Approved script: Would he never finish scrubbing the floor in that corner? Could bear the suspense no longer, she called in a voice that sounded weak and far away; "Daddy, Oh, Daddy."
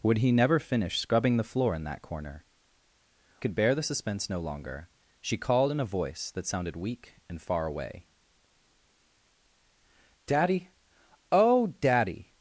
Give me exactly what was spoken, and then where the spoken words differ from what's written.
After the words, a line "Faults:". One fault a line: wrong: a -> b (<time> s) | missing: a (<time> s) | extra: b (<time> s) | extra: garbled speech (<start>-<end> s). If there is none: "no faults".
Would he never finish scrubbing the floor in that corner? Could bear the suspense no longer, she called in a voice that sounded weak and far away; "Daddy, Oh, Daddy."
Faults:
no faults